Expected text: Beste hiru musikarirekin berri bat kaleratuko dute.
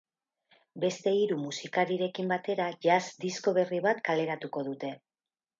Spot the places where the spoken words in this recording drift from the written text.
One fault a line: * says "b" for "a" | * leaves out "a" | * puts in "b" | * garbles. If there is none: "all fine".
* puts in "batera jazz disko"